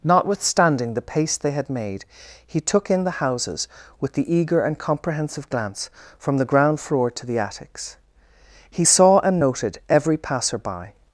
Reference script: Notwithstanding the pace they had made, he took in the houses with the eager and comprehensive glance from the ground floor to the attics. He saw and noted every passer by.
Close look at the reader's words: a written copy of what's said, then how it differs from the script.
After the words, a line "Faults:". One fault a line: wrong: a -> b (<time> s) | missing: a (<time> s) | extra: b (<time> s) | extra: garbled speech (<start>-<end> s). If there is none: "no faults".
Notwithstanding the pace they had made, he took in the houses with the eager and comprehensive glance from the ground floor to the attics. He saw and noted every passer by.
Faults:
no faults